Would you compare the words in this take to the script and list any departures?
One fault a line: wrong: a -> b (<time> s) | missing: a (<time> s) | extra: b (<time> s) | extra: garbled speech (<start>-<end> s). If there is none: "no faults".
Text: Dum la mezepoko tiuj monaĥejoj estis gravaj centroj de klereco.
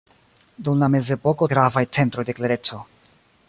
missing: tiuj monaĥejoj estis (1.5 s)